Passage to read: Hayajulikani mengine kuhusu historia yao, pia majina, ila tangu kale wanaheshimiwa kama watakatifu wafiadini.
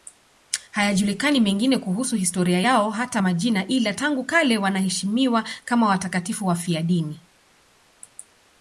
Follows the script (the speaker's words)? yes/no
no